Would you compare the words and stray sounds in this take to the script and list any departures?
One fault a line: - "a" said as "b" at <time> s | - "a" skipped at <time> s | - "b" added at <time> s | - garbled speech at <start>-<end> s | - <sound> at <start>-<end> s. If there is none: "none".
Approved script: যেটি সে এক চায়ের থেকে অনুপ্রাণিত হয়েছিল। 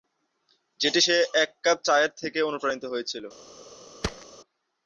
- "কাপ" added at 1.6 s
- thud at 4.0-4.3 s